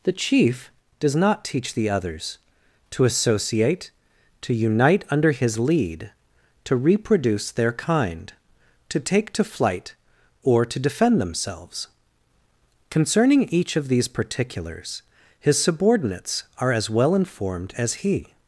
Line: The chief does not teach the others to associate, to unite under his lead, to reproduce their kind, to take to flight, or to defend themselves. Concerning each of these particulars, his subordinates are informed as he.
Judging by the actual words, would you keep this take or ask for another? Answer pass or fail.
fail